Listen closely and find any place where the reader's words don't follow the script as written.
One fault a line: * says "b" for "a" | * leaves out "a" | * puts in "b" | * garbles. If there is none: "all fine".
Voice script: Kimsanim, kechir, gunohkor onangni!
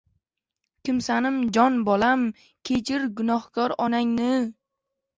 * puts in "jon bolam"